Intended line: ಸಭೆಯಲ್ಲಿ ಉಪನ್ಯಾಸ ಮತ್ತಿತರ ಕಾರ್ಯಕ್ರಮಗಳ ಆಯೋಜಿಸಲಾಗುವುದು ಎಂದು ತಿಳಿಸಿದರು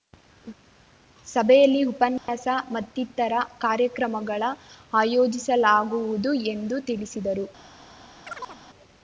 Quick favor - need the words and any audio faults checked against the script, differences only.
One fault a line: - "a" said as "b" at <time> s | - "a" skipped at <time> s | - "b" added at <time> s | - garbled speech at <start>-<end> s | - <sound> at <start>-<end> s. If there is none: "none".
- dropout at 2.2-2.3 s
- chirp at 8.2-8.6 s